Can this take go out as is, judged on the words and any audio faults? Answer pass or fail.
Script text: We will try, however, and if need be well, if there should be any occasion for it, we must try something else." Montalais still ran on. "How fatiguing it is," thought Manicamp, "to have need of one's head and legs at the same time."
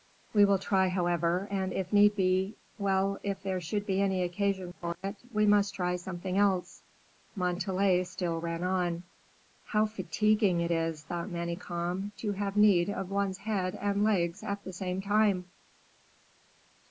pass